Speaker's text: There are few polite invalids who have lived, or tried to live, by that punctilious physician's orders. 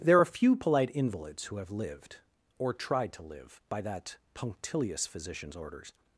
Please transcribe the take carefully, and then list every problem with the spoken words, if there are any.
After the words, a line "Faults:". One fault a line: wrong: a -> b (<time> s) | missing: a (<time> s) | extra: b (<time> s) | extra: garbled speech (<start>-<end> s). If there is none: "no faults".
There are few polite invalids who have lived, or tried to live, by that punctilious physician's orders.
Faults:
no faults